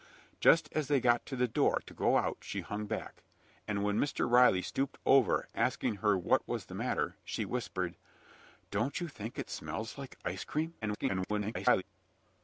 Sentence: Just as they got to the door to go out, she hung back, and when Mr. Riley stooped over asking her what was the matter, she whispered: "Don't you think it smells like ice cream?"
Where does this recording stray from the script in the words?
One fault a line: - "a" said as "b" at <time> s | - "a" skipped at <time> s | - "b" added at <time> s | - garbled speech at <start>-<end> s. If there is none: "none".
- garbled speech at 10.8-11.8 s